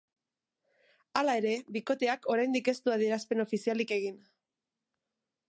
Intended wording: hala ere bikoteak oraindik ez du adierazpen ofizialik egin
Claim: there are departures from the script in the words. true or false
false